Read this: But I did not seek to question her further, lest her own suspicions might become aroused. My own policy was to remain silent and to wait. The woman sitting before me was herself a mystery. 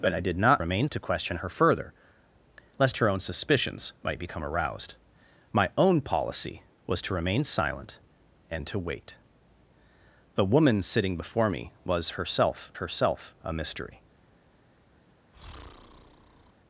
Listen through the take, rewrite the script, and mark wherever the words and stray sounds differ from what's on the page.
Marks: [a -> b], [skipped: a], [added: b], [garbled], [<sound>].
But I did not [seek -> remain] to question her further, lest her own suspicions might become aroused. My own policy was to remain silent and to wait. The woman sitting before me was herself [added: herself] a mystery. [breath]